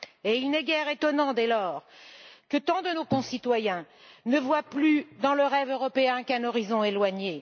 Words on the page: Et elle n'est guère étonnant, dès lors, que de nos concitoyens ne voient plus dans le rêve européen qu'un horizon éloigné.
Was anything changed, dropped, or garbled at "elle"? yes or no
yes